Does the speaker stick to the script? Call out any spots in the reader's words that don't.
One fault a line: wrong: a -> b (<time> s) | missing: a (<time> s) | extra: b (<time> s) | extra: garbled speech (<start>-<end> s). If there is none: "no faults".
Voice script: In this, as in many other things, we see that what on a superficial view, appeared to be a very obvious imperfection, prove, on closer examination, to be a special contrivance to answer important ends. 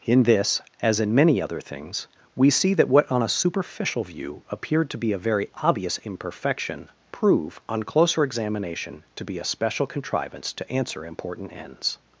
no faults